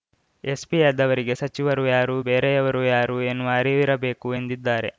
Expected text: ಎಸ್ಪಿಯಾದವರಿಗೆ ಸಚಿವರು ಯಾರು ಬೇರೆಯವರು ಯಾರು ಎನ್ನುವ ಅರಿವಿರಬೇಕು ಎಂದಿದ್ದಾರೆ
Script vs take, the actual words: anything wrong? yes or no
no